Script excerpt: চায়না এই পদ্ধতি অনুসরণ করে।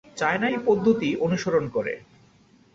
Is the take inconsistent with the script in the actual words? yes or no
no